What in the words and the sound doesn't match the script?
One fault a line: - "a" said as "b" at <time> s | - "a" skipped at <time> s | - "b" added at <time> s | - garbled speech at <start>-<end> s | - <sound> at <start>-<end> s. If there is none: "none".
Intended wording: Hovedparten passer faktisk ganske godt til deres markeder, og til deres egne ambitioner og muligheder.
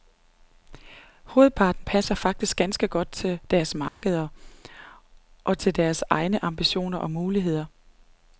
- dropout at 3.9-4.0 s